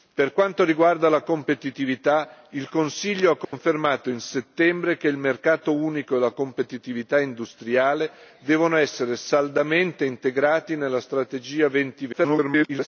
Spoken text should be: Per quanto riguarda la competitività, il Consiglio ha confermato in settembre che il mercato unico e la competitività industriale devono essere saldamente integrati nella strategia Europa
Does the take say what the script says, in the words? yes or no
no